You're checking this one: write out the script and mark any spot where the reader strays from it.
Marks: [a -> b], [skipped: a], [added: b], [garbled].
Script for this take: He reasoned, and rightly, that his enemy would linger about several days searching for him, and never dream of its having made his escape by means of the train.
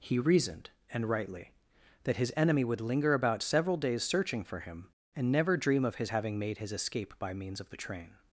He reasoned, and rightly, that his enemy would linger about several days searching for him, and never dream of [its -> his] having made his escape by means of the train.